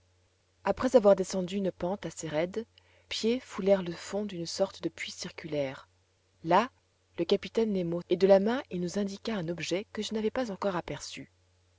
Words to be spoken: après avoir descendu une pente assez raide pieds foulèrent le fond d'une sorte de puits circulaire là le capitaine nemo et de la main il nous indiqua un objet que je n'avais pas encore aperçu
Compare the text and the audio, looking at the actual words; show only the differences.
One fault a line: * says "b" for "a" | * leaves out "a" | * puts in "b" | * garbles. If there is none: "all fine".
all fine